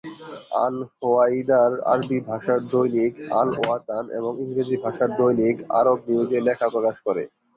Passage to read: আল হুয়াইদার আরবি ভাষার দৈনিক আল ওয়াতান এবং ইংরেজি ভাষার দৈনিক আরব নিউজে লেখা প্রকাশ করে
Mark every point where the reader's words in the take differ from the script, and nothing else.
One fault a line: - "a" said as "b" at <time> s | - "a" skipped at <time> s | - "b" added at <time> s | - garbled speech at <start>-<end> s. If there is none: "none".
none